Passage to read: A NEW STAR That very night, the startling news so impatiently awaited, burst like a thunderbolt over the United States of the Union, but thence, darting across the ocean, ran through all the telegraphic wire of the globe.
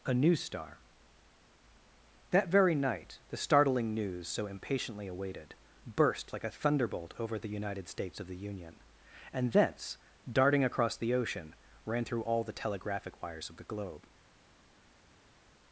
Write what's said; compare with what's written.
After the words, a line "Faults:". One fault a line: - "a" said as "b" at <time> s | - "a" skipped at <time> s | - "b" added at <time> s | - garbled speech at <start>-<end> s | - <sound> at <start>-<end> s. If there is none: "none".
A NEW STAR That very night, the startling news so impatiently awaited, burst like a thunderbolt over the United States of the Union, and thence, darting across the ocean, ran through all the telegraphic wires of the globe.
Faults:
- "but" said as "and" at 9.3 s
- "wire" said as "wires" at 13.2 s